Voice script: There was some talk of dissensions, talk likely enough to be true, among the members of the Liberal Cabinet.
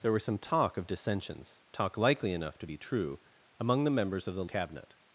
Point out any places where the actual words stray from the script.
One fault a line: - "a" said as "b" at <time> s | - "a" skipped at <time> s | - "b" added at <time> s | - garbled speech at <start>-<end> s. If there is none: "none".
- "Liberal" skipped at 4.4 s